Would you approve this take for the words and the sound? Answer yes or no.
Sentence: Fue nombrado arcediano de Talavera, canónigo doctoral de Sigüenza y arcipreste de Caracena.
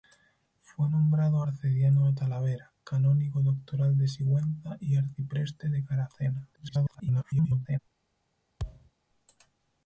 no